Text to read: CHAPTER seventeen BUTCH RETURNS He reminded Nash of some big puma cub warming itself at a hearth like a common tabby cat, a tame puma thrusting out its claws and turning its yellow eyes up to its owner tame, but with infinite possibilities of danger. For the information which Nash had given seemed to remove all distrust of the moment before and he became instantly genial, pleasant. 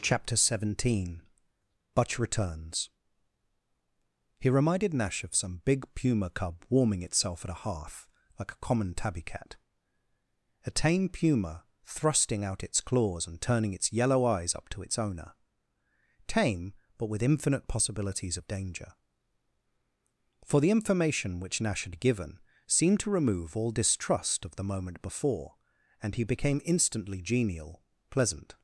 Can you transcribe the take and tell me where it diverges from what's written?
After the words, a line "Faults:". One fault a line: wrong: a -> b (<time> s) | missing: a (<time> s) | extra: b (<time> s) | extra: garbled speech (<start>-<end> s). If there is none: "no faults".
CHAPTER seventeen BUTCH RETURNS He reminded Nash of some big puma cub warming itself at a hearth like a common tabby cat, a tame puma thrusting out its claws and turning its yellow eyes up to its owner tame, but with infinite possibilities of danger. For the information which Nash had given seemed to remove all distrust of the moment before and he became instantly genial, pleasant.
Faults:
no faults